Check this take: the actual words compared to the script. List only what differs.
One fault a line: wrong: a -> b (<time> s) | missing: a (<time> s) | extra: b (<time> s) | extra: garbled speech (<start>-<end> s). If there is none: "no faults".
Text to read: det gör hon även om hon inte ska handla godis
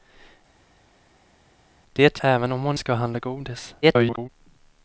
missing: gör hon (2.2 s)
missing: inte (2.8 s)
extra: garbled speech (3.8-4.3 s)